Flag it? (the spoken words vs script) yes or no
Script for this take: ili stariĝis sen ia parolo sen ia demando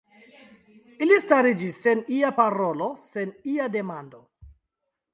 no